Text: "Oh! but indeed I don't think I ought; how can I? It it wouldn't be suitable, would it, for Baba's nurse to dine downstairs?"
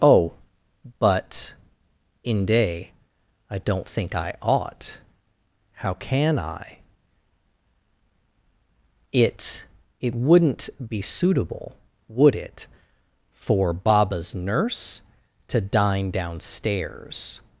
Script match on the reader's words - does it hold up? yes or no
no